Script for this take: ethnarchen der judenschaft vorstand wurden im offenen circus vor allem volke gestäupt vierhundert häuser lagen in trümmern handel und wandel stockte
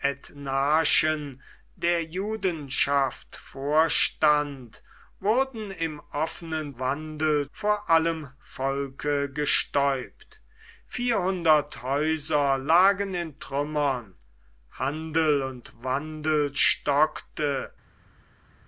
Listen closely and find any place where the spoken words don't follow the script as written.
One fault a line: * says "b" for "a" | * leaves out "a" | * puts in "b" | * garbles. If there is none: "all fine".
* says "wandel" for "circus"